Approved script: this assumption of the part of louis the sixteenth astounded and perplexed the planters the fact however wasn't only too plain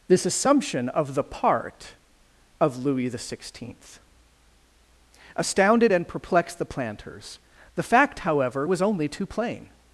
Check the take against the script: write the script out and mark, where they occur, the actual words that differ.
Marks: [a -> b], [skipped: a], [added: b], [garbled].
this assumption of the part of louis the sixteenth astounded and perplexed the planters the fact however [wasn't -> was] only too plain